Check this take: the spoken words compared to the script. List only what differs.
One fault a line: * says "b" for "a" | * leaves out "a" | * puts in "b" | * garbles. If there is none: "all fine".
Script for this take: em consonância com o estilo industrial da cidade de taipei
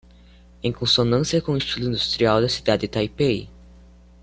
all fine